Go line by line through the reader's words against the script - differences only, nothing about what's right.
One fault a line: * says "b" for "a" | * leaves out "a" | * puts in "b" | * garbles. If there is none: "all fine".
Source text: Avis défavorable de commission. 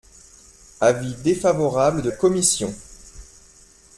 all fine